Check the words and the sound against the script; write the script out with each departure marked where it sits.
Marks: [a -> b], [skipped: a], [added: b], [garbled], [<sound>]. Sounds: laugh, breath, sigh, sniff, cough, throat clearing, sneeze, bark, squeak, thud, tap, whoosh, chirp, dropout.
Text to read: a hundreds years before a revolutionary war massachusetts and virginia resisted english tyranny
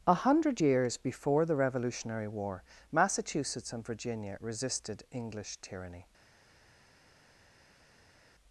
a [hundreds -> hundred] years before [a -> the] revolutionary war massachusetts and virginia resisted english tyranny